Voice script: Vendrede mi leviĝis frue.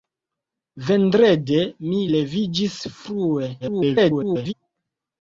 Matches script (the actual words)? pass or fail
fail